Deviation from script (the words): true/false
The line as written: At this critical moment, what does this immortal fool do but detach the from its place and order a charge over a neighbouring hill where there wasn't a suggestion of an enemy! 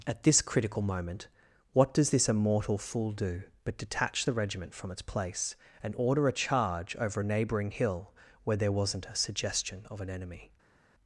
true